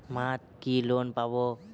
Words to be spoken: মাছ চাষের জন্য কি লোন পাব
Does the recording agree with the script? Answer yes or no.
no